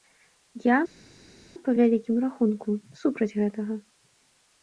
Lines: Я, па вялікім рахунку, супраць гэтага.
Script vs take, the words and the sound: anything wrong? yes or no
no